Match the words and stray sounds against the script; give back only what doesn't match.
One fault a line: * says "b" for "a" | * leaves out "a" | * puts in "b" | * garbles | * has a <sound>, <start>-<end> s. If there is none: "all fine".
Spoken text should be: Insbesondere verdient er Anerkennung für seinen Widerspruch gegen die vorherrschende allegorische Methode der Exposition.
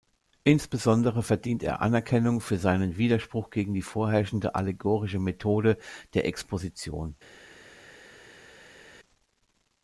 all fine